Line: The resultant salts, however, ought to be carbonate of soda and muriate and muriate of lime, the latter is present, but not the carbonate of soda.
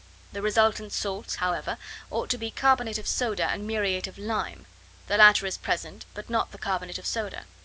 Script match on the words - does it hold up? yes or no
no